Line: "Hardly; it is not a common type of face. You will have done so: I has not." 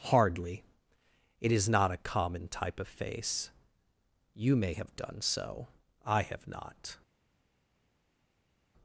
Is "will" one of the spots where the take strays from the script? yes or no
yes